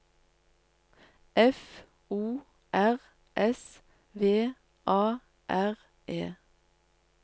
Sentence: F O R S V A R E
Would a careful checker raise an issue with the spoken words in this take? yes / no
no